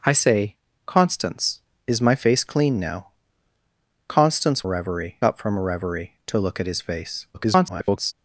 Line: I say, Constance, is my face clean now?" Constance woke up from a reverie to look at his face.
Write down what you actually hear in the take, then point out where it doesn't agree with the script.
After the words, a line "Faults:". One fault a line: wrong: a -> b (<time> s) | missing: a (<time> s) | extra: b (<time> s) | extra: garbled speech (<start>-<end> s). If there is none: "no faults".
I say, Constance, is my face clean now?" Constance reverie up from a reverie to look at his face. [garbled]
Faults:
wrong: woke -> reverie (4.6 s)
extra: garbled speech (7.3-8.1 s)